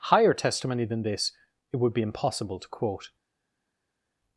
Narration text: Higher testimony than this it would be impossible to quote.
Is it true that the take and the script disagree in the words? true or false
false